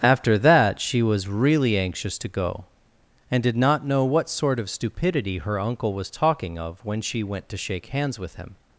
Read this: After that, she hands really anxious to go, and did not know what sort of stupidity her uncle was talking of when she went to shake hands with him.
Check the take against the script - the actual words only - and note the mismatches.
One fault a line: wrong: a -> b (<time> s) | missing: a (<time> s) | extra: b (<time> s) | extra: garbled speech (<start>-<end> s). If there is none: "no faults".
wrong: hands -> was (1.0 s)